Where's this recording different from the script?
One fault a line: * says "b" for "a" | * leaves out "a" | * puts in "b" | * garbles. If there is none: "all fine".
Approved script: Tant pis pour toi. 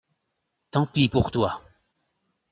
all fine